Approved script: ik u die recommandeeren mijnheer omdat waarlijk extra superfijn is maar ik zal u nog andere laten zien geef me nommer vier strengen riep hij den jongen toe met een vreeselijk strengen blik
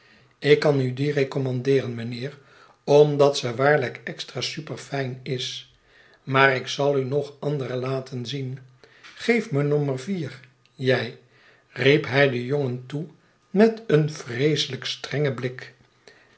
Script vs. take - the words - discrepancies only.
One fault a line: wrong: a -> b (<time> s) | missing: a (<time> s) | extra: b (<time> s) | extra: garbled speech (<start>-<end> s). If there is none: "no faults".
extra: kan (0.6 s)
extra: ze (3.4 s)
wrong: strengen -> jij (10.8 s)